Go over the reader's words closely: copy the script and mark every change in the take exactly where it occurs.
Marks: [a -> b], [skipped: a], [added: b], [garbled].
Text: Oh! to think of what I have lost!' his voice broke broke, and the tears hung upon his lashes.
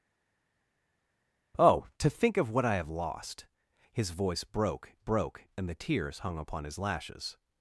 Oh! to think of what I have lost!' his voice broke broke, and the tears hung upon his lashes.